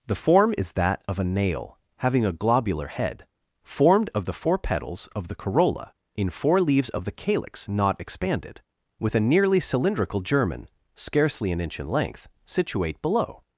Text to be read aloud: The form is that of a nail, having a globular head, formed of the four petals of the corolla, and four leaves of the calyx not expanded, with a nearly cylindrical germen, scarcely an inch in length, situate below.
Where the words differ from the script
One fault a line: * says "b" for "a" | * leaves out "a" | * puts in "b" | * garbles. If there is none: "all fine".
* says "in" for "and"